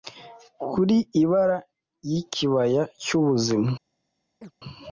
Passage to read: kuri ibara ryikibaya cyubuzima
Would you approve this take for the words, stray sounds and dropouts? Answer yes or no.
no